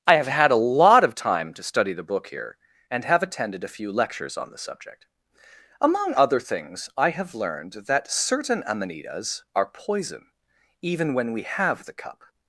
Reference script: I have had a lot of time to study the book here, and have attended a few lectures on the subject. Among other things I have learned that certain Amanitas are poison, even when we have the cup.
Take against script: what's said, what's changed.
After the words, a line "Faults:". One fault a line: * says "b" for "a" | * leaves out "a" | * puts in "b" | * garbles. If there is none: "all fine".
I have had a lot of time to study the book here, and have attended a few lectures on the subject. Among other things I have learned that certain Amanitas are poison, even when we have the cup.
Faults:
all fine